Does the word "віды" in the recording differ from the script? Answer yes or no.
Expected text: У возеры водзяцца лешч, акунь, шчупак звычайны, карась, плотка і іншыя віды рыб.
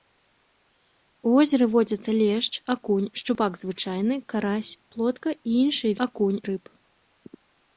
yes